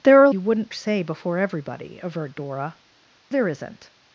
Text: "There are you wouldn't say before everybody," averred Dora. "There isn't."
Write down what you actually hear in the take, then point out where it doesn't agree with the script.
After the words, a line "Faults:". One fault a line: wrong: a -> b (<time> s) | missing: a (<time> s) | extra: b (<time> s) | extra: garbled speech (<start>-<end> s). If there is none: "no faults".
"There are you wouldn't say before everybody," averred Dora. "There isn't."
Faults:
no faults